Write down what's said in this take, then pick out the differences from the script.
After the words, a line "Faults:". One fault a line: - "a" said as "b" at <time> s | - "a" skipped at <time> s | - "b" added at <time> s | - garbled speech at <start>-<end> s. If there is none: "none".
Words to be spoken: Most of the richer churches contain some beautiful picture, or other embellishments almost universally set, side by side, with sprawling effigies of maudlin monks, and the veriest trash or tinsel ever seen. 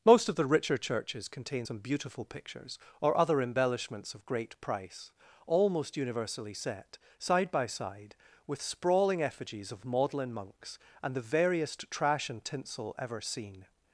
Most of the richer churches contain some beautiful pictures, or other embellishments of great price, almost universally set, side by side, with sprawling effigies of maudlin monks, and the veriest trash and tinsel ever seen.
Faults:
- "picture" said as "pictures" at 2.2 s
- "of great price" added at 4.1 s
- "or" said as "and" at 12.3 s